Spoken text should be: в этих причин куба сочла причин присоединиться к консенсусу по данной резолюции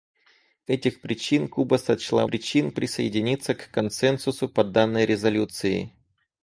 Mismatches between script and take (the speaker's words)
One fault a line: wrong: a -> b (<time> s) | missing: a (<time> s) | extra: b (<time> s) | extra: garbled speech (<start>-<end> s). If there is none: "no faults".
no faults